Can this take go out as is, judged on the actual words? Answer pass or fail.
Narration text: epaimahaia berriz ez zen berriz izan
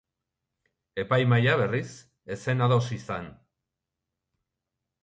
fail